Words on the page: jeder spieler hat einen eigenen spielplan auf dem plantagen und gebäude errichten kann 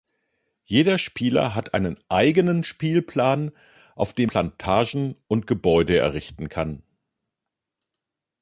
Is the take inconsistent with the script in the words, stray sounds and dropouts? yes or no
no